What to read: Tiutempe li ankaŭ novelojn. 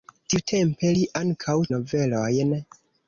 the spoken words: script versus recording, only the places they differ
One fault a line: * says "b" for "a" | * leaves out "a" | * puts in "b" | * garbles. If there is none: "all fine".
all fine